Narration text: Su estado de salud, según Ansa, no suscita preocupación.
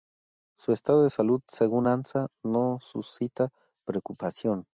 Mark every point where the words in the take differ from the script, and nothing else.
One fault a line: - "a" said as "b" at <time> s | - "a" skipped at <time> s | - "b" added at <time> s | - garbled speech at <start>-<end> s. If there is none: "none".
none